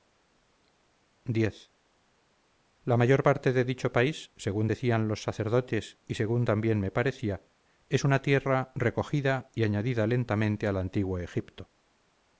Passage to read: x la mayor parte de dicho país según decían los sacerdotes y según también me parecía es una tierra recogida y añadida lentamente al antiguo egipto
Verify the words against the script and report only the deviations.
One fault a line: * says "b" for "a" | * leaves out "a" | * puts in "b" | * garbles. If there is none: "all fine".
all fine